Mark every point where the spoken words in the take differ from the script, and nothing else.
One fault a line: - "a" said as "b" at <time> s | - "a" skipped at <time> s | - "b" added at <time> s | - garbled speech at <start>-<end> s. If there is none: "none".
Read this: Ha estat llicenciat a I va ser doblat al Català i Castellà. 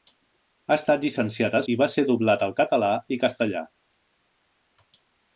none